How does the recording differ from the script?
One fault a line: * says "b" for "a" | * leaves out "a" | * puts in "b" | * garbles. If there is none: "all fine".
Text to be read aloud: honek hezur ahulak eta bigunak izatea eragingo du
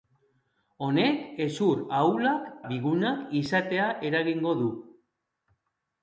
* leaves out "eta"